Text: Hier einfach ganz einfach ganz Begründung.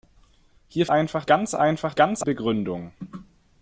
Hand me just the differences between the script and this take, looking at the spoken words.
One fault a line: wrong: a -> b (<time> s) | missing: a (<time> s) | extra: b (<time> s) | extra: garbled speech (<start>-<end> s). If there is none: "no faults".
no faults